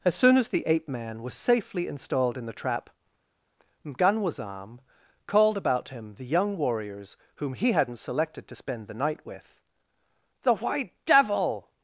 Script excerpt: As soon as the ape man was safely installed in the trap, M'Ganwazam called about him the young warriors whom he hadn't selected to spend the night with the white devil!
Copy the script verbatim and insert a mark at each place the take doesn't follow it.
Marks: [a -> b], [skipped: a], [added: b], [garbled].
As soon as the ape man was safely installed in the trap, M'Ganwazam called about him the young warriors whom he hadn't selected to spend the night with the white devil!